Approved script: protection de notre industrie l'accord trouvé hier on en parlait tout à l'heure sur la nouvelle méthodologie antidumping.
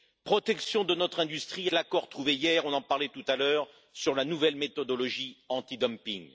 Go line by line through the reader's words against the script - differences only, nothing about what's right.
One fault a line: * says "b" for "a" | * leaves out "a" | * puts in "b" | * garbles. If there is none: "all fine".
all fine